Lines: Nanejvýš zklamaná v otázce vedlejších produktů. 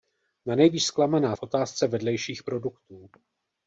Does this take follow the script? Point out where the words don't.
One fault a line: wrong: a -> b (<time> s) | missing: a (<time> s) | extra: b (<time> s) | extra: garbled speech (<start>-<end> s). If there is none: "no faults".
no faults